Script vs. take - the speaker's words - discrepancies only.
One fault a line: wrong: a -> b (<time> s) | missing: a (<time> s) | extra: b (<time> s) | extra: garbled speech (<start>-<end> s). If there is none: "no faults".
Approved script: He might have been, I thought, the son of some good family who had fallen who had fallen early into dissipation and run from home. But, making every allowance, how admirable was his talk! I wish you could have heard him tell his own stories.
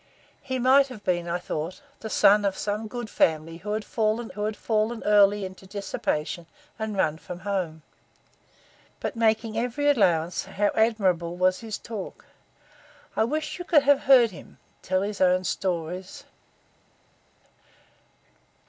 no faults